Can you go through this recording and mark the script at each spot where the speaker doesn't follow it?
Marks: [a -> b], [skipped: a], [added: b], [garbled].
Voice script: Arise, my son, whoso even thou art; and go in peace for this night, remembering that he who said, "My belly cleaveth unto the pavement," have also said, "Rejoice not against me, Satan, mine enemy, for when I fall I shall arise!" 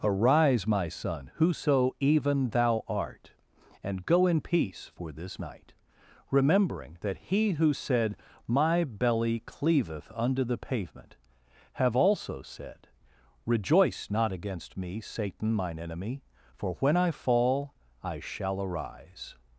Arise, my son, whoso even thou art; and go in peace for this night, remembering that he who said, "My belly cleaveth unto the pavement," have also said, "Rejoice not against me, Satan, mine enemy, for when I fall I shall arise!"